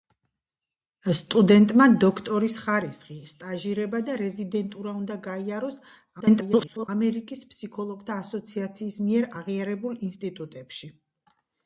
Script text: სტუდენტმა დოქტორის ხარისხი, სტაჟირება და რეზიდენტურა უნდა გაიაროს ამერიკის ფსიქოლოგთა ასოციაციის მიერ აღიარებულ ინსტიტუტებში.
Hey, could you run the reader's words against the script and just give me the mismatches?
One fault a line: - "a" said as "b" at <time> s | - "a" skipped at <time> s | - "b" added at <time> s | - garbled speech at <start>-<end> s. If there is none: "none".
- garbled speech at 6.2-6.9 s